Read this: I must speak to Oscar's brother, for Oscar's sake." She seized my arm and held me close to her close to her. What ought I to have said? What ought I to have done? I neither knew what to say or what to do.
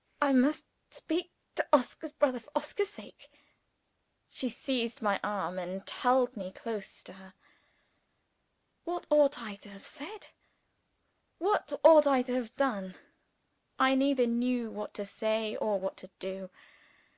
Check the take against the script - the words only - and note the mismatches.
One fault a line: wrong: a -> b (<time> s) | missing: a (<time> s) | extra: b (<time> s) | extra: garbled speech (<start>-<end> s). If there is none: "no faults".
missing: close to her (7.3 s)